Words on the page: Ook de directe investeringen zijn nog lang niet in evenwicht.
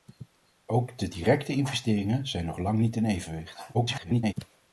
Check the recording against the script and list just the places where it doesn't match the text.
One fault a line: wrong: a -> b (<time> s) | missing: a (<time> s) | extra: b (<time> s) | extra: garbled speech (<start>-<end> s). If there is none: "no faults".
extra: garbled speech (3.7-4.3 s)